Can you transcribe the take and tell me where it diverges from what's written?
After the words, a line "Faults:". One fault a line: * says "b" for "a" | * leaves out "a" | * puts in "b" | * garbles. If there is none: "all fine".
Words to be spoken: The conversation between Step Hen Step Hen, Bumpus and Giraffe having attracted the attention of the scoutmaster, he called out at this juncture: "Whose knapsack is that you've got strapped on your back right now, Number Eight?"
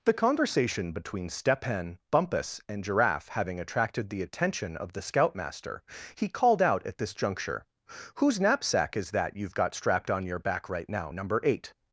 The conversation between Step Hen, Bumpus and Giraffe having attracted the attention of the scoutmaster, he called out at this juncture: "Whose knapsack is that you've got strapped on your back right now, Number Eight?"
Faults:
* leaves out "Step Hen"